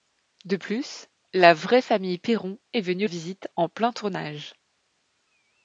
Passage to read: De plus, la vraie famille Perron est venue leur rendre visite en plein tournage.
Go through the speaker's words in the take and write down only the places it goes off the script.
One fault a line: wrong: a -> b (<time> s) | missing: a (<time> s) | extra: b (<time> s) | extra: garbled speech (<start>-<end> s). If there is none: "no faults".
missing: leur rendre (3.1 s)